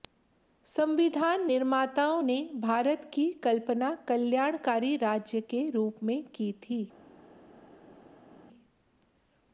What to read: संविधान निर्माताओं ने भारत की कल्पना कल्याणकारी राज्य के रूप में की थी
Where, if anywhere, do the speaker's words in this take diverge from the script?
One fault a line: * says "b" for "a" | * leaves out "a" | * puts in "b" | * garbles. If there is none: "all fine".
all fine